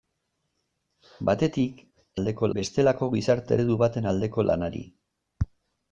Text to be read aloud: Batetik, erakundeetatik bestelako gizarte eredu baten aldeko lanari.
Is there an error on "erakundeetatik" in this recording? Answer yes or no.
yes